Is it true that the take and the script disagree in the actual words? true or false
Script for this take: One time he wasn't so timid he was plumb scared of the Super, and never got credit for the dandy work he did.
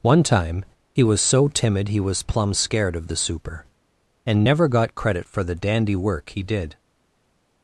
true